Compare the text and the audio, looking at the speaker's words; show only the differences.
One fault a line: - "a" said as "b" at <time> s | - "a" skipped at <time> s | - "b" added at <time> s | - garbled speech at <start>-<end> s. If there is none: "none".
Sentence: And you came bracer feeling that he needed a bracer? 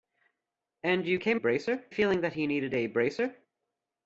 none